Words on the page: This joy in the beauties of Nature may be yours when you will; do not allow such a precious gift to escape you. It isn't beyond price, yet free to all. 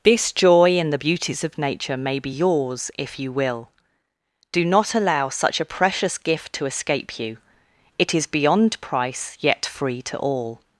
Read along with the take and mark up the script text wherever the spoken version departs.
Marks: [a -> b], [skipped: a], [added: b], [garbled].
This joy in the beauties of Nature may be yours [when -> if] you will; do not allow such a precious gift to escape you. It [isn't -> is] beyond price, yet free to all.